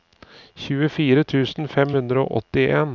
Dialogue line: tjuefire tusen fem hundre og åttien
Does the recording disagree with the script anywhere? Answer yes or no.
no